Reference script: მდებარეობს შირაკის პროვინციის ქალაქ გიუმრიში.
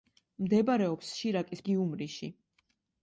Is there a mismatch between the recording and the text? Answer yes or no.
yes